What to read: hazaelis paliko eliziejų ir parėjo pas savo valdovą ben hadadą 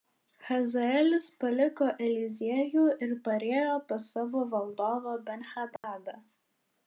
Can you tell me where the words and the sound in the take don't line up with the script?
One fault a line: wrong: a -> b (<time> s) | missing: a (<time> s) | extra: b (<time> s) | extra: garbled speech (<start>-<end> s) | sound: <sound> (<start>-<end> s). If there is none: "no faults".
sound: dropout (5.8-5.8 s)